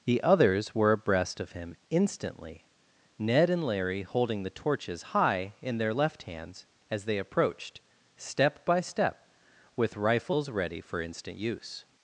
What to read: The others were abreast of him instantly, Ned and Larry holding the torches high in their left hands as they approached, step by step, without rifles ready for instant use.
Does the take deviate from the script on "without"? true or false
true